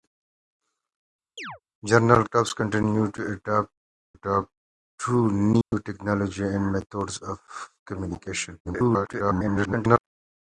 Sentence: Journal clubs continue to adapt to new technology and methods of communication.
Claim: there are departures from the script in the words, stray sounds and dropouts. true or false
true